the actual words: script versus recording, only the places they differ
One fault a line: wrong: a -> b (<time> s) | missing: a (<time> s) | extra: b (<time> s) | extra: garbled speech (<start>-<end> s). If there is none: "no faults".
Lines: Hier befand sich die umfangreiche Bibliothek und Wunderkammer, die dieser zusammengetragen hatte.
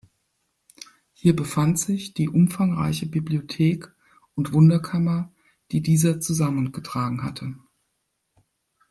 no faults